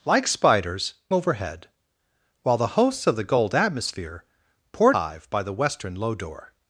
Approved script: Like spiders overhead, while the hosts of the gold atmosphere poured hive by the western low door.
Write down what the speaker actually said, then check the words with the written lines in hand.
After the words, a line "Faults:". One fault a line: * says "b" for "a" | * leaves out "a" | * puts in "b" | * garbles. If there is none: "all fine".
Like spiders overhead, while the hosts of the gold atmosphere poured hive by the western low door.
Faults:
all fine